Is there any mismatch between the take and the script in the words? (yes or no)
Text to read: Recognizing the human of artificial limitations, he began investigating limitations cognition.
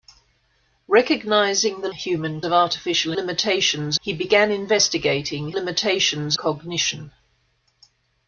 no